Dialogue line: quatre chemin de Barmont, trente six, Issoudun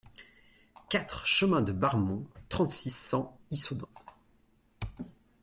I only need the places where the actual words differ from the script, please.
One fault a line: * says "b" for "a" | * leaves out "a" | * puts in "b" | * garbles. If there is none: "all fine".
* puts in "cent"